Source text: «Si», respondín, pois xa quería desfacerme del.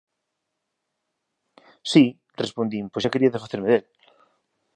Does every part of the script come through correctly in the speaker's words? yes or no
yes